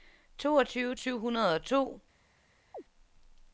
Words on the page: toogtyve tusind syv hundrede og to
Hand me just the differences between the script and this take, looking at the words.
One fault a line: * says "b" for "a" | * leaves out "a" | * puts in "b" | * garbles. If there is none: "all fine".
* leaves out "tusind"